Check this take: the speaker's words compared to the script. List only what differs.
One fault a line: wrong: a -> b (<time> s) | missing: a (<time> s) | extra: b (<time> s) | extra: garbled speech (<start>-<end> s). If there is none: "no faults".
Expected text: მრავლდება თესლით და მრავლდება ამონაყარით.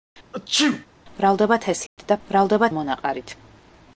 no faults